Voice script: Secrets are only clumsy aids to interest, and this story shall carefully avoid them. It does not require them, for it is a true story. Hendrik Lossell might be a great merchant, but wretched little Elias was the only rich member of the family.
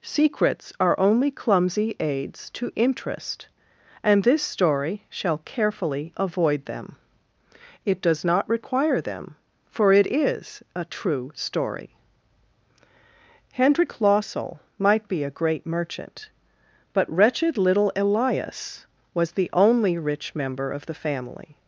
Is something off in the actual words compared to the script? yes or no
no